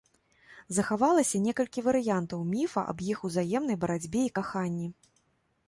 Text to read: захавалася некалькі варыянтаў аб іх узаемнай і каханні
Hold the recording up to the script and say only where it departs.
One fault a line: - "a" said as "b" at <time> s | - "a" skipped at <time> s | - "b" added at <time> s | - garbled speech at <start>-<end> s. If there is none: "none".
- "міфа" added at 2.5 s
- "барацьбе" added at 3.9 s